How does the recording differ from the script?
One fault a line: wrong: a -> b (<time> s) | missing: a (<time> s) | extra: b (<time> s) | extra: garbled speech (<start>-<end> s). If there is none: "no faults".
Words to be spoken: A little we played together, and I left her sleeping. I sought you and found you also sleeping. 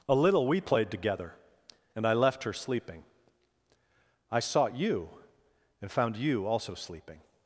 no faults